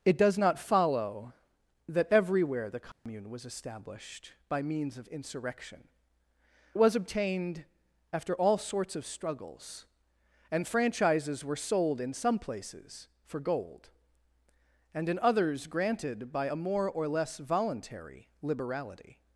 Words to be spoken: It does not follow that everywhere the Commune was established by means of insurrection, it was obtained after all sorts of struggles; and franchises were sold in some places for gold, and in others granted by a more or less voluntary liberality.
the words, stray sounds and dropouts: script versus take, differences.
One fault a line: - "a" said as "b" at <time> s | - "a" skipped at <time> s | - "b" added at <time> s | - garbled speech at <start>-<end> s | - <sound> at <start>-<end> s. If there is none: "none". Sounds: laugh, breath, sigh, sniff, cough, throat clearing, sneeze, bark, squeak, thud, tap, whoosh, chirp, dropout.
- dropout at 2.9-3.1 s